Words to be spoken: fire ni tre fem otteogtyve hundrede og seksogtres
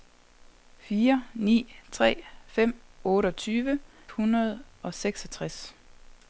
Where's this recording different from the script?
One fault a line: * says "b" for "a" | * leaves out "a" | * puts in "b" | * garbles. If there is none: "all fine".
all fine